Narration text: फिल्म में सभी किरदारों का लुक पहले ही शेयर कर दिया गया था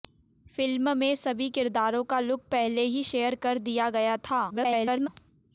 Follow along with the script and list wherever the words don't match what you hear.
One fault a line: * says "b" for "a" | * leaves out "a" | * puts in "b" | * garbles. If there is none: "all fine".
* garbles